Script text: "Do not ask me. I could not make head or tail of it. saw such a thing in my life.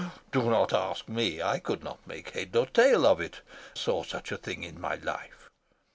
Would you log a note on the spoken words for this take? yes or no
no